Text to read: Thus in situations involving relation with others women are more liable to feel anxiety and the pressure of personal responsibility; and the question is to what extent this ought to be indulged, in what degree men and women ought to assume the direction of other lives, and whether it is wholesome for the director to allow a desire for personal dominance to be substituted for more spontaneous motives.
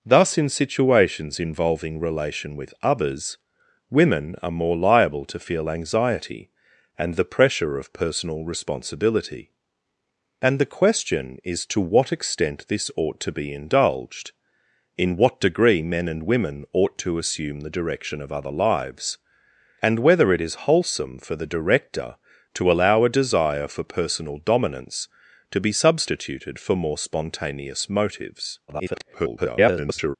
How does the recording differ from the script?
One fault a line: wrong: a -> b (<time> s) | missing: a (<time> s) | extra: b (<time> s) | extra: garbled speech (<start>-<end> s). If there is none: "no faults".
extra: garbled speech (28.7-30.2 s)